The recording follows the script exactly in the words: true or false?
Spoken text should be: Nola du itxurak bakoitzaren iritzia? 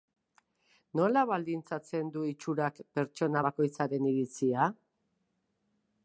false